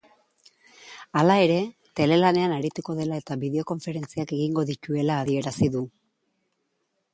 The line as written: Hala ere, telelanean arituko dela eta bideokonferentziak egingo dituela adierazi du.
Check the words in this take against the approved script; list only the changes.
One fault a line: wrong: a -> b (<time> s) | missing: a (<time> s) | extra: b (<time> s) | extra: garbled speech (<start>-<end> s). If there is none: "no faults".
no faults